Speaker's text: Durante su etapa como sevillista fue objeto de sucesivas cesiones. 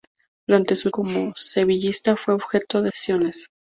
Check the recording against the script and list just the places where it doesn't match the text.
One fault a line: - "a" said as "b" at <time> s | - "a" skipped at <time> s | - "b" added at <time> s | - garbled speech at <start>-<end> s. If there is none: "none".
- "etapa" skipped at 0.9 s
- "sucesivas" skipped at 2.9 s